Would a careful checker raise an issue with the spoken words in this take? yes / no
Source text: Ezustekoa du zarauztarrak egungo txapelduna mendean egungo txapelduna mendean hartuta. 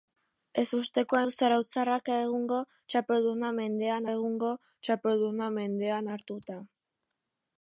no